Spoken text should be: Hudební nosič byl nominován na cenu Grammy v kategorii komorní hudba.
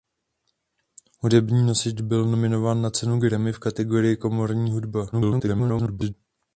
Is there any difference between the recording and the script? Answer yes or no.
yes